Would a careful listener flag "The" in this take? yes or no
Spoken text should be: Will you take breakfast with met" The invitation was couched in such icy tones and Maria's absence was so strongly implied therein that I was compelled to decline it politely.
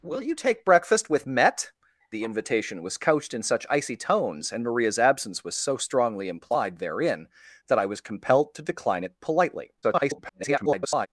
no